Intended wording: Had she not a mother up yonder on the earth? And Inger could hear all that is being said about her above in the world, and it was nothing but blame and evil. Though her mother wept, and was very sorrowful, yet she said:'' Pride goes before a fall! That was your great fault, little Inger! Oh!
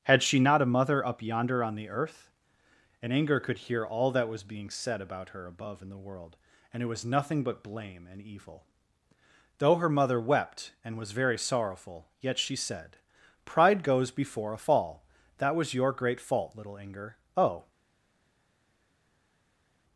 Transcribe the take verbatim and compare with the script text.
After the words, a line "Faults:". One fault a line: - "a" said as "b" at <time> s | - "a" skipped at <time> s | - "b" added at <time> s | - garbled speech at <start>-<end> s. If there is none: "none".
Had she not a mother up yonder on the earth? And Inger could hear all that was being said about her above in the world, and it was nothing but blame and evil. Though her mother wept, and was very sorrowful, yet she said:'' Pride goes before a fall! That was your great fault, little Inger! Oh!
Faults:
- "is" said as "was" at 4.3 s